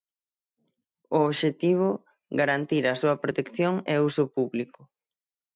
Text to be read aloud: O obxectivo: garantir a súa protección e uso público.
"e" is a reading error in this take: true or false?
false